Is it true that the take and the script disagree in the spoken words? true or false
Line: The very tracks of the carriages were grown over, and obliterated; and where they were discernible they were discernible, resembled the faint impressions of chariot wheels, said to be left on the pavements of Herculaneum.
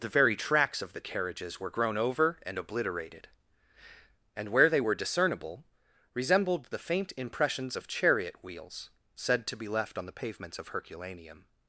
true